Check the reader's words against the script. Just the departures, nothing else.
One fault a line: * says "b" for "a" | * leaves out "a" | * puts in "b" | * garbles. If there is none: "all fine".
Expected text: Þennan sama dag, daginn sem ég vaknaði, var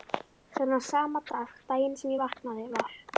all fine